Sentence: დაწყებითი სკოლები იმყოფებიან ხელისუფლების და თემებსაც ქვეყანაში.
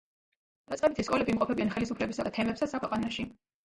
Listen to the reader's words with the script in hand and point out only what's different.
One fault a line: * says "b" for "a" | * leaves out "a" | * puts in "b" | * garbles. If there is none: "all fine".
all fine